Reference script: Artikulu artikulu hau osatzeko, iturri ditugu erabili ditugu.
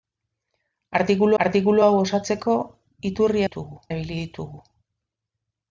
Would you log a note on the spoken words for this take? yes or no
no